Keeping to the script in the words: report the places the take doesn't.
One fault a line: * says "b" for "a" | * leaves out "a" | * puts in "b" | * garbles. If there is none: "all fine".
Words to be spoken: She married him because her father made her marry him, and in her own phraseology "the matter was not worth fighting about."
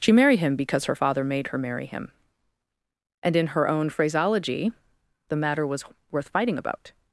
* leaves out "not"